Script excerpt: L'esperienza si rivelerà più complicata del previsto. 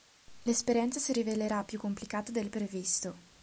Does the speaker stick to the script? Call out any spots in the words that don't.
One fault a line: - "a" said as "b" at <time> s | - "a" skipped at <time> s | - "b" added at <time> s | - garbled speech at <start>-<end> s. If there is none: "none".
none